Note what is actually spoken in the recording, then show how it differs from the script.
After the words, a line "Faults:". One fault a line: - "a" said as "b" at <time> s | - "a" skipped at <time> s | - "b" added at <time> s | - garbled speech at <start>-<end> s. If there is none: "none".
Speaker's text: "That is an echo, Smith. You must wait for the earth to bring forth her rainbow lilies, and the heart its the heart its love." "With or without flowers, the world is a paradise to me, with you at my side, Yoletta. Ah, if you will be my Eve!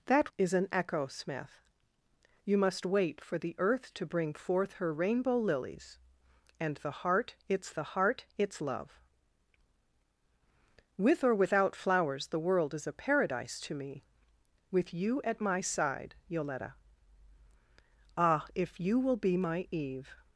"That is an echo, Smith. You must wait for the earth to bring forth her rainbow lilies, and the heart its the heart its love." "With or without flowers, the world is a paradise to me, with you at my side, Yoletta. Ah, if you will be my Eve!
Faults:
none